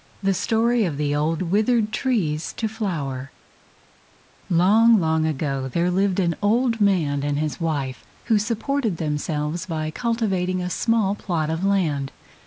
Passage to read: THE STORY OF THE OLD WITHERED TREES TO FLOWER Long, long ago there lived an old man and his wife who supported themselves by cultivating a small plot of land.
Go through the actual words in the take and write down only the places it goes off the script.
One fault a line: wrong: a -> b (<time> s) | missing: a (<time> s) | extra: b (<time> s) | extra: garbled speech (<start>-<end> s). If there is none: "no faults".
no faults